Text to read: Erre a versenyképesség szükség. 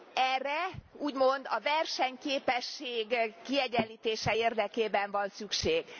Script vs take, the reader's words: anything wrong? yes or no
yes